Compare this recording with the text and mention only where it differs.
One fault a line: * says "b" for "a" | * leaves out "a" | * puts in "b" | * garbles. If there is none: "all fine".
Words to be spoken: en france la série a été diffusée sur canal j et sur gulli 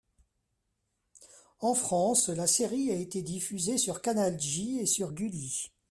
all fine